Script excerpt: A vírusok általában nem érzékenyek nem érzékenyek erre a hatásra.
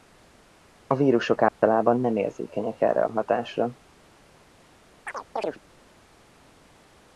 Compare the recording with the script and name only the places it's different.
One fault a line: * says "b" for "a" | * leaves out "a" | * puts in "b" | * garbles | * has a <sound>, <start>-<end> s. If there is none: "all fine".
* has a dropout, 1.5-1.6 s
* leaves out "nem érzékenyek"
* has a chirp, 5.1-5.6 s